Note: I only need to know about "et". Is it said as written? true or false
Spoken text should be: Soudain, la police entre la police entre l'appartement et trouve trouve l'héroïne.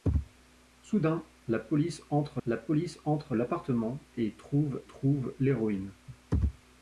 true